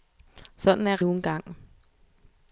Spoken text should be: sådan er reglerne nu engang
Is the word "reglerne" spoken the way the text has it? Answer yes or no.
no